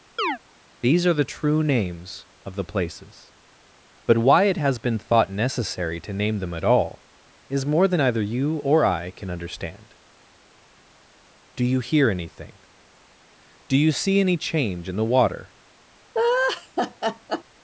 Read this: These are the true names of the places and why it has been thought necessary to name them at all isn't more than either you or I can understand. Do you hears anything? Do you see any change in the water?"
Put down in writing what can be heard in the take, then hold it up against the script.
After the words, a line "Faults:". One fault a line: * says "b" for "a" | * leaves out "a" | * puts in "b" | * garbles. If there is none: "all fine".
These are the true names of the places but why it has been thought necessary to name them at all is more than either you or I can understand. Do you hear anything? Do you see any change in the water?"
Faults:
* says "but" for "and"
* says "is" for "isn't"
* says "hear" for "hears"